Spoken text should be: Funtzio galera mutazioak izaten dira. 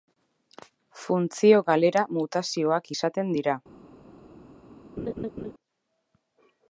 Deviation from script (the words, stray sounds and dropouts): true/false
true